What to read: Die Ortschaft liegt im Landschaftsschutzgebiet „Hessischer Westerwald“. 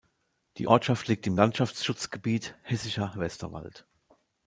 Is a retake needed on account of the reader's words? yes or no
no